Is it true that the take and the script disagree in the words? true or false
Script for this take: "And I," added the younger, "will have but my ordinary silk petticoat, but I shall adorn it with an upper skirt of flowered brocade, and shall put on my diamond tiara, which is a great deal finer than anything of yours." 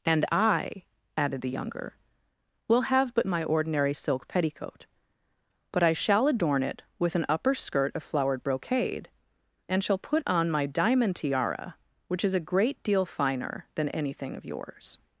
false